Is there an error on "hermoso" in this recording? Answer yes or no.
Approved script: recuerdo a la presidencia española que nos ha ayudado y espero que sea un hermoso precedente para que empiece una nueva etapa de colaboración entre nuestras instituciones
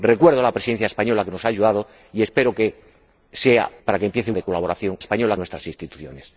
yes